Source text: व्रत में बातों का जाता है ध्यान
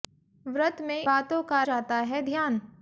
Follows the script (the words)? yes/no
yes